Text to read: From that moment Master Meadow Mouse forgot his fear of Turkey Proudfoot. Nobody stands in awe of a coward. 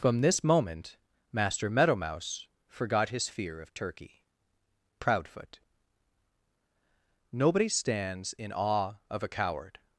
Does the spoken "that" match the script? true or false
false